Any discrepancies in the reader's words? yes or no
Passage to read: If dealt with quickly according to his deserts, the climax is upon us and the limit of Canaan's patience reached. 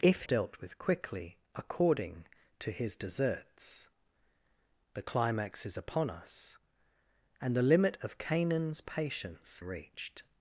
no